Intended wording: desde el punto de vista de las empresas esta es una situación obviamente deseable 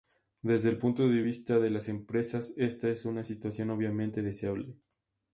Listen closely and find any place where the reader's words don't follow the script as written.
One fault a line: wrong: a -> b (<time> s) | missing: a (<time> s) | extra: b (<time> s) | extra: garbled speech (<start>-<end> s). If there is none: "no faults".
no faults